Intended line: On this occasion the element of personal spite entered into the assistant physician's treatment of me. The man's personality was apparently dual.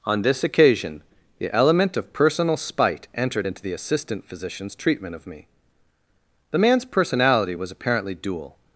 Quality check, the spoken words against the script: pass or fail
pass